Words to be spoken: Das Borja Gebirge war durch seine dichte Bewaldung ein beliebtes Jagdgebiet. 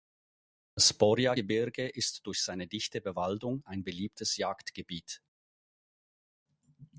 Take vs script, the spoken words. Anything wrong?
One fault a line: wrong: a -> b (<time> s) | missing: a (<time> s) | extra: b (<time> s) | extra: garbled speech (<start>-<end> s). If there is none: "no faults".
wrong: war -> ist (1.9 s)